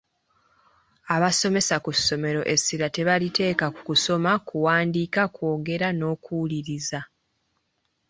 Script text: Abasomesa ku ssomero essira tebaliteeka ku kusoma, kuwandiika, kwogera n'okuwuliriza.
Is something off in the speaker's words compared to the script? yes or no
no